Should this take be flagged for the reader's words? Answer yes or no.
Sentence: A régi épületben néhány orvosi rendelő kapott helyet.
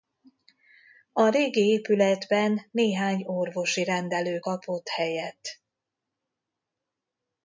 no